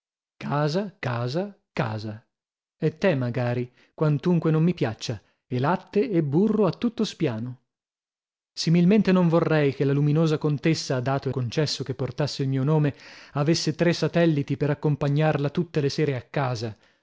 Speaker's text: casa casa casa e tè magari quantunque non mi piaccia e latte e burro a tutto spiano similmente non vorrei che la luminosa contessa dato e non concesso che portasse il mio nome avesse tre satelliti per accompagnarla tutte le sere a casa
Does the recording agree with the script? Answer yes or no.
no